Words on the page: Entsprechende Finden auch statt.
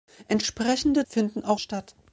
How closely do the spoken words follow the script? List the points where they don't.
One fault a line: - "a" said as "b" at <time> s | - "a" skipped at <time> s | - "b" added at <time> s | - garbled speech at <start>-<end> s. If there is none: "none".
none